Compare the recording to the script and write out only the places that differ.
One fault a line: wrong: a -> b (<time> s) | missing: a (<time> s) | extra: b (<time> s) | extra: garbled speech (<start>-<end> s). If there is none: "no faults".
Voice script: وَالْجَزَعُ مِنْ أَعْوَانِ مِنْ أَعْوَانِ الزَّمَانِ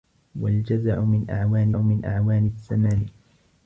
no faults